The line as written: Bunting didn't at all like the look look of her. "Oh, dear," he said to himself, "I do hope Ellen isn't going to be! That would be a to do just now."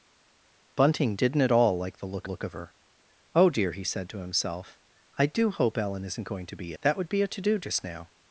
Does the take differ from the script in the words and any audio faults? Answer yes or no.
no